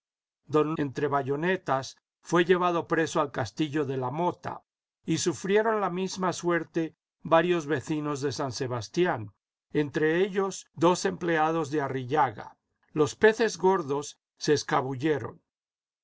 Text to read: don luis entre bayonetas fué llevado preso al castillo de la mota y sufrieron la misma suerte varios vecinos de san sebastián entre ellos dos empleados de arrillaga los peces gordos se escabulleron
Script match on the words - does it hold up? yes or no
no